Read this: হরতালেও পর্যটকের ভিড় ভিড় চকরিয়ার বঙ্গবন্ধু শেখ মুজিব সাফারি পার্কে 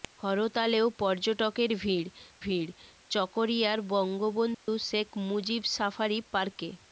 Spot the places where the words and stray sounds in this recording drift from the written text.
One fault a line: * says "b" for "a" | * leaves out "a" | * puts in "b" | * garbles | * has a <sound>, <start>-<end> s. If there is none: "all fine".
* has a dropout, 4.5-4.7 s